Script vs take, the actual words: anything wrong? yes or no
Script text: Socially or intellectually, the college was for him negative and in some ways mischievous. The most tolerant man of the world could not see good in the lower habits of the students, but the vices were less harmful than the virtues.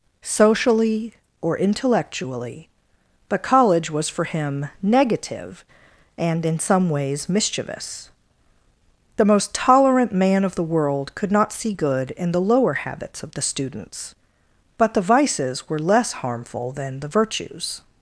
yes